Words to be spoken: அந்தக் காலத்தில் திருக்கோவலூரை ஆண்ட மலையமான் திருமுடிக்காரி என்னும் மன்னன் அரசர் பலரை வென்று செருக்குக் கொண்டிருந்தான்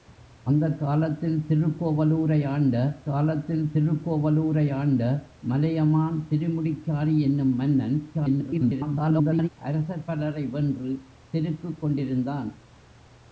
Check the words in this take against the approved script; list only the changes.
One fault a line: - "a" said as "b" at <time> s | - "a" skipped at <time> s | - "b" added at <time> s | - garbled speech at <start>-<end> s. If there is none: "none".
- "காலத்தில் திருக்கோவலூரை ஆண்ட" added at 3.0 s
- garbled speech at 8.1-9.5 s